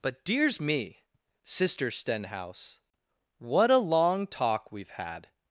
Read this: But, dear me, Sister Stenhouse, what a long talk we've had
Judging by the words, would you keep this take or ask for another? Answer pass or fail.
fail